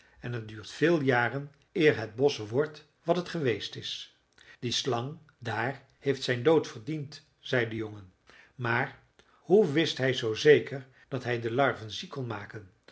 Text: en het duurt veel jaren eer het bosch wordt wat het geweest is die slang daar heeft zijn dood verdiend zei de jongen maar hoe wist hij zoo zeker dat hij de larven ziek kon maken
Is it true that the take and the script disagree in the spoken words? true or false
false